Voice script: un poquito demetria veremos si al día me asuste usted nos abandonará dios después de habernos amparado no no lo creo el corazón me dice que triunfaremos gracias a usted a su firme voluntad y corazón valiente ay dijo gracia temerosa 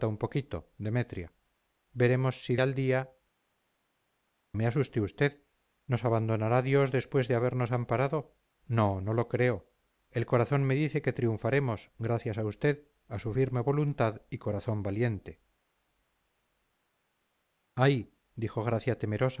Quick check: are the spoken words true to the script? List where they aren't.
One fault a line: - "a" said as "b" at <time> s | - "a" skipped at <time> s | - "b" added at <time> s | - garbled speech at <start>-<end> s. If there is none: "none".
none